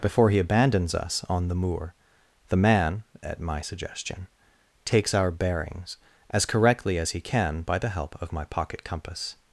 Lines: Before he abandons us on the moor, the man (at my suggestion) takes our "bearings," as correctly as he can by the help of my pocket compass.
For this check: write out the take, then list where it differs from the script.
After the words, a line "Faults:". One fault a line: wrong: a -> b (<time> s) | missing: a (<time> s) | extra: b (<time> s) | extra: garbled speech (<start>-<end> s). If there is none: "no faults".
Before he abandons us on the moor, the man (at my suggestion) takes our "bearings," as correctly as he can by the help of my pocket compass.
Faults:
no faults